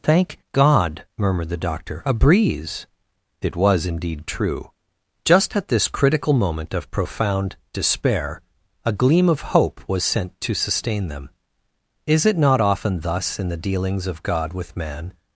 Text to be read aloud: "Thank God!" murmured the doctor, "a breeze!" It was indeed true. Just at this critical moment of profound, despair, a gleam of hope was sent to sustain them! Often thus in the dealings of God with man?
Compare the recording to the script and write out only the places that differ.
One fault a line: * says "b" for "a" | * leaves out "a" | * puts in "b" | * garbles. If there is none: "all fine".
* puts in "Is it not"